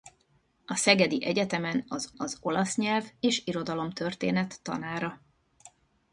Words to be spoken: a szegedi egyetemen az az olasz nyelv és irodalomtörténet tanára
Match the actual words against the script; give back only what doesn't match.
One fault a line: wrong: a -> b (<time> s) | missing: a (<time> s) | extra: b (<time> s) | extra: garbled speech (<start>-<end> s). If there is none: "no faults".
no faults